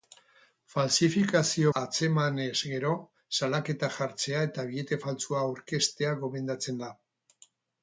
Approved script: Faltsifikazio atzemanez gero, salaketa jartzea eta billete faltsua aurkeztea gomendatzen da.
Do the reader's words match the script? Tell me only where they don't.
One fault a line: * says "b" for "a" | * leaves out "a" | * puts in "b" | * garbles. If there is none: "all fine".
all fine